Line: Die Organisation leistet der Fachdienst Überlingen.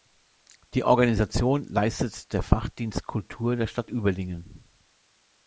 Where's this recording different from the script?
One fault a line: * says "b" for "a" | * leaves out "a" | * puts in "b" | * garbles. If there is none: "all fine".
* puts in "Kultur der Stadt"